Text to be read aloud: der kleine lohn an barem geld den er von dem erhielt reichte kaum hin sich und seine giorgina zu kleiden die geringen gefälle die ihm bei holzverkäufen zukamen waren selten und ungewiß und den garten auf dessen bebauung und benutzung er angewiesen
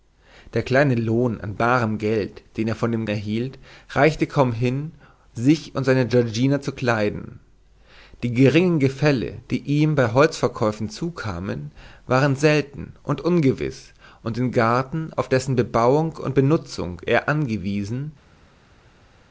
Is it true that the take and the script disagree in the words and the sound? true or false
false